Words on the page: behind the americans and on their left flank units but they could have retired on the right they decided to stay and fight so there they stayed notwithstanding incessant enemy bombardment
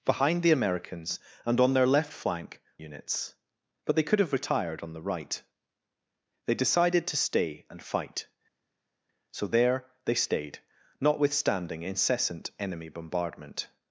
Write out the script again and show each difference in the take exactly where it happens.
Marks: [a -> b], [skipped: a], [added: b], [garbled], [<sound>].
behind the americans and on their left flank units but they could have retired on the right they decided to stay and fight so there they stayed notwithstanding incessant enemy bombardment